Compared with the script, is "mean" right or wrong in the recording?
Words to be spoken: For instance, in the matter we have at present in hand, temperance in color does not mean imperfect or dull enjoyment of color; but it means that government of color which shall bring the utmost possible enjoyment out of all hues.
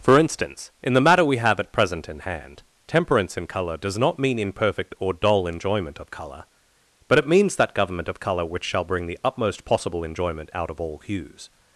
right